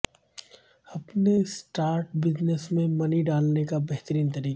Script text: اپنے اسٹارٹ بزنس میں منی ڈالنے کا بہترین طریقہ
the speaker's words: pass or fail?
pass